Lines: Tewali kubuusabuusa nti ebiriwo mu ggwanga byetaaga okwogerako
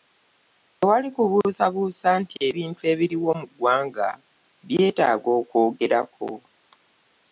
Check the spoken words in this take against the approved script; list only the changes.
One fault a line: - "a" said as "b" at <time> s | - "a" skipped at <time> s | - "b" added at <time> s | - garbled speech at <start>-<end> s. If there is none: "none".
- "ebintu" added at 2.5 s